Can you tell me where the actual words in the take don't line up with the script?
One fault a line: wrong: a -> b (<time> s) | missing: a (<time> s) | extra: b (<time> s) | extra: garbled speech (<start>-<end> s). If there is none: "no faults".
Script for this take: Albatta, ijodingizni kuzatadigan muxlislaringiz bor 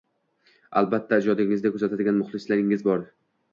no faults